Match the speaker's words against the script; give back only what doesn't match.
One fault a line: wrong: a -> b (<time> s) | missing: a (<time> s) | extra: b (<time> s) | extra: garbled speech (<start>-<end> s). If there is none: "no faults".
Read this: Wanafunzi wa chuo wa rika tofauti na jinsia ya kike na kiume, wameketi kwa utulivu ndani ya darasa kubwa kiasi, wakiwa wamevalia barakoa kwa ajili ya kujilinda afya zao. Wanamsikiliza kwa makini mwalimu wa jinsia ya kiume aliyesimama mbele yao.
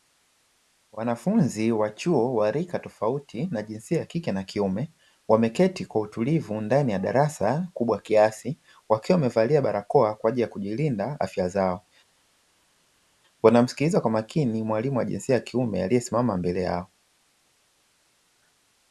no faults